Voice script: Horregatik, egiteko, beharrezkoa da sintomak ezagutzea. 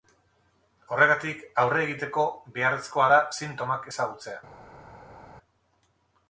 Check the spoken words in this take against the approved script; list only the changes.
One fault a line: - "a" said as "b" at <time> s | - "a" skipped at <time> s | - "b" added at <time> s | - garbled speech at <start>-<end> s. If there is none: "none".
- "aurre" added at 1.6 s